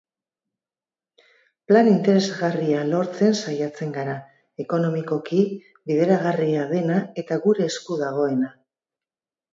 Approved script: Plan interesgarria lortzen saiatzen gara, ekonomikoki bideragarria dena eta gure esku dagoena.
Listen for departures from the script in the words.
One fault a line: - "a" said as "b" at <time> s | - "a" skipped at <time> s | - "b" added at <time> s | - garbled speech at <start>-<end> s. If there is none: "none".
none